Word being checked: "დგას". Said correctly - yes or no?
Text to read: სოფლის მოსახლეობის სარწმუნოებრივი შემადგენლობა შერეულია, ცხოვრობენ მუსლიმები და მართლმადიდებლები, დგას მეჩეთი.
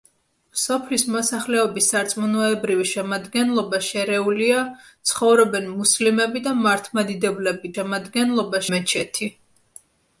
no